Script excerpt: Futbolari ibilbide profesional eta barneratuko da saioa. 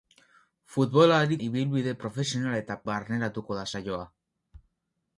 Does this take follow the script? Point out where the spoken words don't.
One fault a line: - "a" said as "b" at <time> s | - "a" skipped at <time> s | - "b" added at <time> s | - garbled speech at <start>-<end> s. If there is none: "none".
none